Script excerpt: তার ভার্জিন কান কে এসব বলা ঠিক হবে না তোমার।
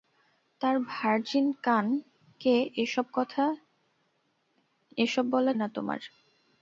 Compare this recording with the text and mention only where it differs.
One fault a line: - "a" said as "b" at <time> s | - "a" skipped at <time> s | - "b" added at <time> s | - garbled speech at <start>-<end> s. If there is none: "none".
- "ঠিক হবে" skipped at 5.5 s